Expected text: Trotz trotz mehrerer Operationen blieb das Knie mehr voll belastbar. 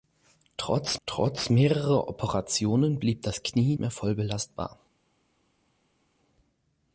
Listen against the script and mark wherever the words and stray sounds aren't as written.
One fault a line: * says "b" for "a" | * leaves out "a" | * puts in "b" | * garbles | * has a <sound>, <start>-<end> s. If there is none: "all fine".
all fine